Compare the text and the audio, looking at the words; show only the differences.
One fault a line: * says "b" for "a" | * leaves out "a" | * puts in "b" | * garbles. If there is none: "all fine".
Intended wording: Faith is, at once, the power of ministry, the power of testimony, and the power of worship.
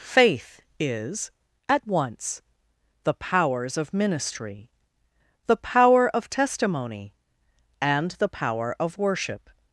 * says "powers" for "power"